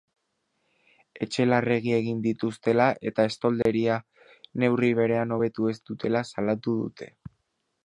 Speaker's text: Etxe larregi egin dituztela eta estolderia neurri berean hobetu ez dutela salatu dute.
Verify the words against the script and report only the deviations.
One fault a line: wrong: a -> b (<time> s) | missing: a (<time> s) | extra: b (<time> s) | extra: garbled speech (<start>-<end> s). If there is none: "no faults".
no faults